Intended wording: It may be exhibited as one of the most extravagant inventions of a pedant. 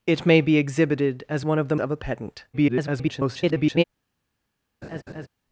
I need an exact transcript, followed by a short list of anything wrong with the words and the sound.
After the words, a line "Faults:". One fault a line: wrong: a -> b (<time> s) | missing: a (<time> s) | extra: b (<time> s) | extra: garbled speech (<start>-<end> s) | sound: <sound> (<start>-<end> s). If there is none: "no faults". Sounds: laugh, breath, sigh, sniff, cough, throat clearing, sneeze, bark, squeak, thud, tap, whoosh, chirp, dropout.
It may be exhibited as one of the of a pedant. [garbled]
Faults:
missing: most extravagant inventions (1.8 s)
extra: garbled speech (2.5-3.8 s)
sound: laugh (4.8-5.3 s)